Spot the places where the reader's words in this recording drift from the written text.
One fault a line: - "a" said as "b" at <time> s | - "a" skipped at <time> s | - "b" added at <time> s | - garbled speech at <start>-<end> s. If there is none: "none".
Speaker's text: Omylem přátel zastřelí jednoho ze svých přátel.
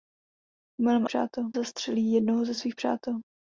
none